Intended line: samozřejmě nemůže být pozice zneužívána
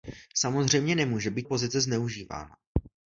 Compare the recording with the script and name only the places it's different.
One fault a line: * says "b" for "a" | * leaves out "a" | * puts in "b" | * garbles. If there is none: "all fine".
all fine